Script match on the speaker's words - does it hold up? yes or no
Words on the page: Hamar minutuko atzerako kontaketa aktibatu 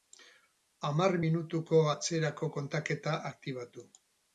yes